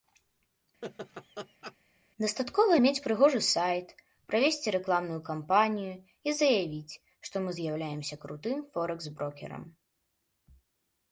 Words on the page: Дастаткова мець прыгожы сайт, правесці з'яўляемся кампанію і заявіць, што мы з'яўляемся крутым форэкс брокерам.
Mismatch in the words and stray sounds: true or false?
true